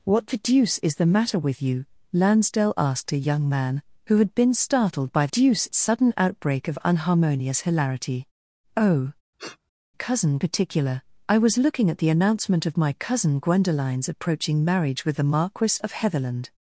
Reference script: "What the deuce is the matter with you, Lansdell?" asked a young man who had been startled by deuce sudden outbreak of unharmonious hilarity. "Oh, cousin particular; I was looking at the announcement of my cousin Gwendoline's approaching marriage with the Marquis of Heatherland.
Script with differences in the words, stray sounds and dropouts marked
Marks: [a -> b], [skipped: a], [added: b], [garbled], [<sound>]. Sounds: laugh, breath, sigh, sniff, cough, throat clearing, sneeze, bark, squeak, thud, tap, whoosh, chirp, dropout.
"What the deuce is the matter with you, Lansdell?" asked a young man who had been startled by deuce sudden outbreak of unharmonious hilarity. "Oh, [sniff] cousin particular; I was looking at the announcement of my cousin Gwendoline's approaching marriage with the Marquis of Heatherland.